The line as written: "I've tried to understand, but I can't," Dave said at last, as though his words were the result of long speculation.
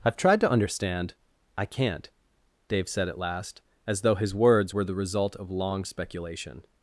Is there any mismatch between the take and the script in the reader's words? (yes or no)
yes